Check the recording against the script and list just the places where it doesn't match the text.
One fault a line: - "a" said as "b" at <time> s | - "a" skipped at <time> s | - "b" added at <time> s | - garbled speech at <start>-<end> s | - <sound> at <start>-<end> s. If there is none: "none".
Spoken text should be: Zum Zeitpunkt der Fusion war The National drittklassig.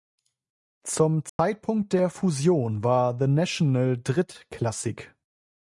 - dropout at 1.3-1.4 s